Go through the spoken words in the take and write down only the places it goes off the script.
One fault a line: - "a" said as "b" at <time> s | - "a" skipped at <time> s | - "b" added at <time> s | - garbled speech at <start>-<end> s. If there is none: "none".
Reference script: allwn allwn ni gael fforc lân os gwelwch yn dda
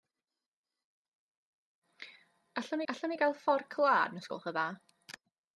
none